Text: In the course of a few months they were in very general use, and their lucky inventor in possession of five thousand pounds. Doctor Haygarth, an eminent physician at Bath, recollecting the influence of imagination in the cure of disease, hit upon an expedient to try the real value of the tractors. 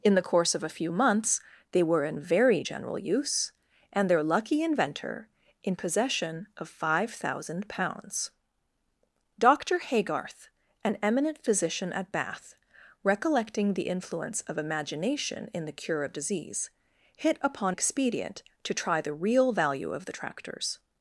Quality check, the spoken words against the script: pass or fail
fail